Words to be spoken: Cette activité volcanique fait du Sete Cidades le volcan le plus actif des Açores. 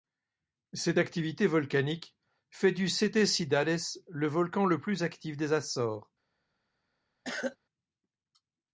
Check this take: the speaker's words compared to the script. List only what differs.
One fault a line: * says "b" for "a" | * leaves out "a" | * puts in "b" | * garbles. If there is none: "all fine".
all fine